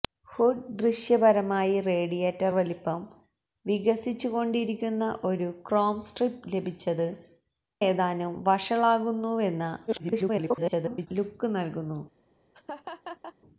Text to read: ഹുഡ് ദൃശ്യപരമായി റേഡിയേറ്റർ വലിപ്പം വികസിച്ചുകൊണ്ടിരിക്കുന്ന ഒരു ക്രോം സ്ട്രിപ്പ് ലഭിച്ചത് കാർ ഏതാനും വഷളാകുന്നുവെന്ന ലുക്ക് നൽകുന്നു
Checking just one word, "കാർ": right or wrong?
wrong